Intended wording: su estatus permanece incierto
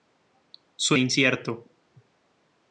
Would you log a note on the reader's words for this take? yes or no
yes